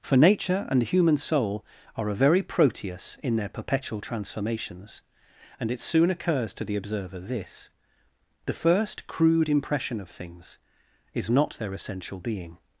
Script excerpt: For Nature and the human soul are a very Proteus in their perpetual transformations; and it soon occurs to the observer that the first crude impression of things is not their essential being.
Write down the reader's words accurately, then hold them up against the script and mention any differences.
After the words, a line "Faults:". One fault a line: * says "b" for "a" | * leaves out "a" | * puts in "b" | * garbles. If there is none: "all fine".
For Nature and the human soul are a very Proteus in their perpetual transformations; and it soon occurs to the observer this the first crude impression of things is not their essential being.
Faults:
* says "this" for "that"